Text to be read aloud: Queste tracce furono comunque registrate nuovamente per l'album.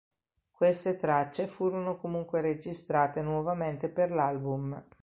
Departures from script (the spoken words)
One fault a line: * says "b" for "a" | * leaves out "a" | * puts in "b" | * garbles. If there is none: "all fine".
all fine